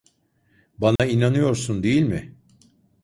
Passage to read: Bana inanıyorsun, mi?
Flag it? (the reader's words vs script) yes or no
yes